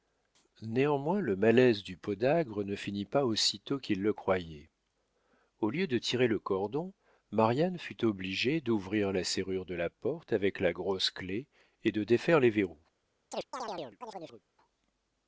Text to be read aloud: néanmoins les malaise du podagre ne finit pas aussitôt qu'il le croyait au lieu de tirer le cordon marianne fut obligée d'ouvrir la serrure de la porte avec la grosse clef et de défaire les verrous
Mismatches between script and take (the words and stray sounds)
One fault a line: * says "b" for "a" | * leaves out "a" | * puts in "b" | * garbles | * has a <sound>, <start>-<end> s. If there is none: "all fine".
* says "le" for "les"
* has a chirp, 13.3-14.4 s